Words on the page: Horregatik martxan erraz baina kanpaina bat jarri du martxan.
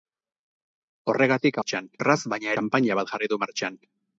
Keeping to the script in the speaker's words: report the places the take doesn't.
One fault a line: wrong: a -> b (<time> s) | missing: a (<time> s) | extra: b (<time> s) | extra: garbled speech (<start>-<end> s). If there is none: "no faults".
no faults